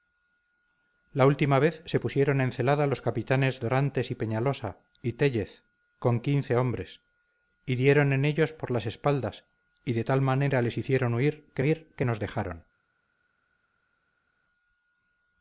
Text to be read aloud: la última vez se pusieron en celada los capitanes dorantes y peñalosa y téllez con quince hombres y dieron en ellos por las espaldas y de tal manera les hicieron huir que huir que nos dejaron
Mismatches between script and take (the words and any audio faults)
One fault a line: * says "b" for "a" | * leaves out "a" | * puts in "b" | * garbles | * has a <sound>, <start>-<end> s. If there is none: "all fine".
all fine